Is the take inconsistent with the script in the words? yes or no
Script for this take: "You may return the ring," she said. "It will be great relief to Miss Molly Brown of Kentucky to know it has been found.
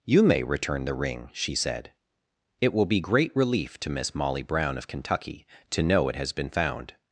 no